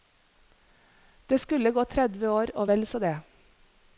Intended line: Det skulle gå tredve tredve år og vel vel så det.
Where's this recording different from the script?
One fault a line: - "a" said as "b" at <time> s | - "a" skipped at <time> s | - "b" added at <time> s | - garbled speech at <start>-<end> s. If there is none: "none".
- "tredve" skipped at 2.3 s
- "vel" skipped at 2.8 s